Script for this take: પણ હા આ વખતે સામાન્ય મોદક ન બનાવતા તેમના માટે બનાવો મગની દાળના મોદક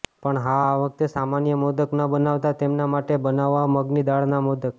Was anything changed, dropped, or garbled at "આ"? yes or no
no